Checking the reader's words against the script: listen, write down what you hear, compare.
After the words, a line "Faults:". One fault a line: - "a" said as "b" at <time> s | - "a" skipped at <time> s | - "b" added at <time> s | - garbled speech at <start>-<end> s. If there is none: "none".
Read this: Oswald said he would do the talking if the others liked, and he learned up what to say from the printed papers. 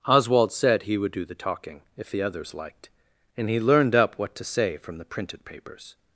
Oswald said he would do the talking if the others liked, and he learned up what to say from the printed papers.
Faults:
none